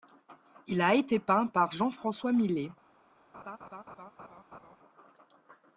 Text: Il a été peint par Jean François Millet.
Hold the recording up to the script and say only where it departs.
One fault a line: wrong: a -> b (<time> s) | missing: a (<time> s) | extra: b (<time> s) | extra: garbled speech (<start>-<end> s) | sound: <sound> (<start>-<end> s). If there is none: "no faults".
sound: laugh (3.3-4.8 s)